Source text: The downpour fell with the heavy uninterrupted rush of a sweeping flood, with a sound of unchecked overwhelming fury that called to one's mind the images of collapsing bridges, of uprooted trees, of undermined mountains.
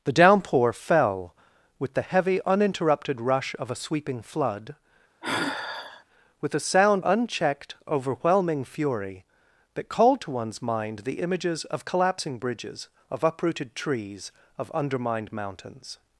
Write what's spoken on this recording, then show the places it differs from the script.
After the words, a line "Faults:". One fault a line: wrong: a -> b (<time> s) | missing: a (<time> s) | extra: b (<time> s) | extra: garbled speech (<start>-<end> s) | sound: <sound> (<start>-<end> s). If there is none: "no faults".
The downpour fell with the heavy uninterrupted rush of a sweeping flood, with a sound unchecked overwhelming fury that called to one's mind the images of collapsing bridges, of uprooted trees, of undermined mountains.
Faults:
sound: sigh (5.2-6.0 s)
missing: of (7.0 s)